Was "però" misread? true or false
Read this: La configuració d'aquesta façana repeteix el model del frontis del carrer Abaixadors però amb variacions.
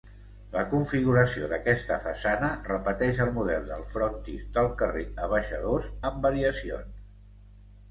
true